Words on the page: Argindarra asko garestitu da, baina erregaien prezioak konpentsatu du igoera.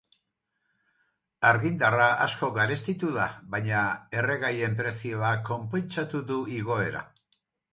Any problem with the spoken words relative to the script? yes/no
no